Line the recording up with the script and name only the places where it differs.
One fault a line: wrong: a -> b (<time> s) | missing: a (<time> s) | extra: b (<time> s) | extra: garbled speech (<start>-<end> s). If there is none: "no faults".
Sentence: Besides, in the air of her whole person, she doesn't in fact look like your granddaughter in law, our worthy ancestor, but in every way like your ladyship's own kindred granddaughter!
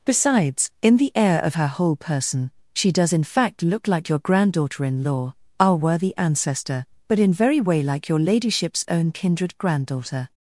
wrong: doesn't -> does (2.9 s)
wrong: every -> very (7.3 s)